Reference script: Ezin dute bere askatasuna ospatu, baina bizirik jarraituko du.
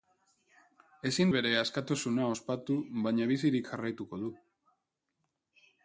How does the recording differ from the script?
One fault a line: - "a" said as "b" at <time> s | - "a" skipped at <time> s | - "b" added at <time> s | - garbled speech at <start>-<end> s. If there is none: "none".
- "dute" skipped at 1.3 s